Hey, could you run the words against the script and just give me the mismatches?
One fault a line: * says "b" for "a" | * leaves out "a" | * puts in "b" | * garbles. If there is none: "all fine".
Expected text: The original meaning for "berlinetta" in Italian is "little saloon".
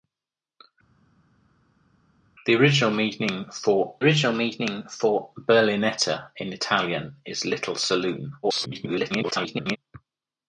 * puts in "original meaning for"
* garbles